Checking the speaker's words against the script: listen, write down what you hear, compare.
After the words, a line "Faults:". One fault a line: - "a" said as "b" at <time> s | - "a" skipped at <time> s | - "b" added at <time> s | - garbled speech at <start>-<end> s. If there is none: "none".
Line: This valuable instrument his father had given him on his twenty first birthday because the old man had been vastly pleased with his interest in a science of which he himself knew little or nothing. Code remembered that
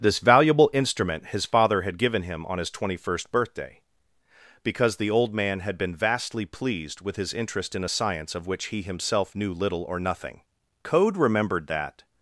This valuable instrument his father had given him on his twenty first birthday because the old man had been vastly pleased with his interest in a science of which he himself knew little or nothing. Code remembered that
Faults:
none